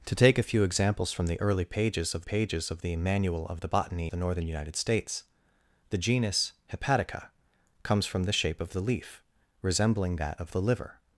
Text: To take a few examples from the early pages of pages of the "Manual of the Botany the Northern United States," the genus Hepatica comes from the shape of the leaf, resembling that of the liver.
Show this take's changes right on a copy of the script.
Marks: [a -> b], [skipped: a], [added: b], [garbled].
To take a few examples from the early pages of pages of the "Manual of the Botany the Northern United States," the genus Hepatica comes from the shape of the leaf, resembling that of the liver.